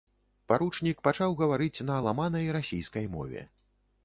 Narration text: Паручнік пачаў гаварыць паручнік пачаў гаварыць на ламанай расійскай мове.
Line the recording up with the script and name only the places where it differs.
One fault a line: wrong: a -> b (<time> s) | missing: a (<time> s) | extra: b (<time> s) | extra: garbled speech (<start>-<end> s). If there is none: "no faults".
missing: паручнік пачаў гаварыць (1.8 s)